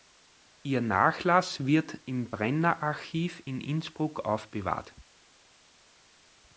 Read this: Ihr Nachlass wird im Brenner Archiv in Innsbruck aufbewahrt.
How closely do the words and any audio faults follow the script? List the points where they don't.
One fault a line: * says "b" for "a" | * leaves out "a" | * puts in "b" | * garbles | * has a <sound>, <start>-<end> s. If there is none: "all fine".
all fine